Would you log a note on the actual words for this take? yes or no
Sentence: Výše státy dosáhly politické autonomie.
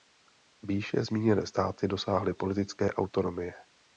yes